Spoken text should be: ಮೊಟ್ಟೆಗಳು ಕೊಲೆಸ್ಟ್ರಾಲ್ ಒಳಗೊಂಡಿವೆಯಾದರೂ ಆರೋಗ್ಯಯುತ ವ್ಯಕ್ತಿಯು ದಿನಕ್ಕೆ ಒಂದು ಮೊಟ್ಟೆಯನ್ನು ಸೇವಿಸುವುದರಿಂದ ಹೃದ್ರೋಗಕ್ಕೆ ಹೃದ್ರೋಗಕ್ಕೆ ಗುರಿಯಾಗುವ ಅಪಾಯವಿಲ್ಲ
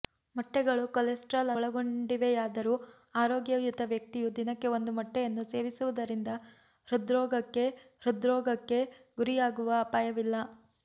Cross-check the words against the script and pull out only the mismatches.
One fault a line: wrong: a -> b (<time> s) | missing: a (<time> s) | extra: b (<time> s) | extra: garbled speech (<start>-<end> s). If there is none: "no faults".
no faults